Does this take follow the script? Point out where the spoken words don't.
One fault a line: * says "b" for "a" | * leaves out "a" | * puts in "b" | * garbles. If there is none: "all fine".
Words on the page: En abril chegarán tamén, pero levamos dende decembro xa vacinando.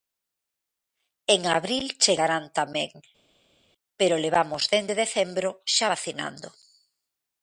all fine